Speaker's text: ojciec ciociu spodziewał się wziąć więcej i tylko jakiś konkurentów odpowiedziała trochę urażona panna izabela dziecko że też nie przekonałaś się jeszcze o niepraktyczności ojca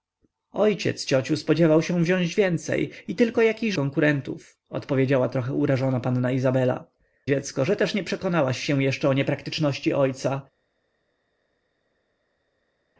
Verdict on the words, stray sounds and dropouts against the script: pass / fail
pass